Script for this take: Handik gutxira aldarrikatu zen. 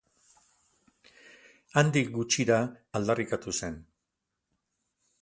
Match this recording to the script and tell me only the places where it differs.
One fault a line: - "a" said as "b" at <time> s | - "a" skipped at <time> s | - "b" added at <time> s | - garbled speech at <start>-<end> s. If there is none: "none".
none